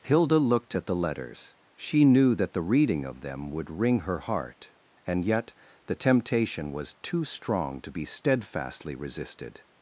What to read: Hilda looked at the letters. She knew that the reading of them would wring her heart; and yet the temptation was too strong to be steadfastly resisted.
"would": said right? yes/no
yes